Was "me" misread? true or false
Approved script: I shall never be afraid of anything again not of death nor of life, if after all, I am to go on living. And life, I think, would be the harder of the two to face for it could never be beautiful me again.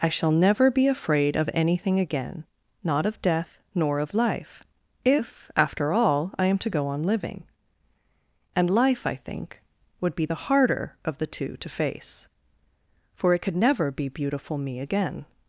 false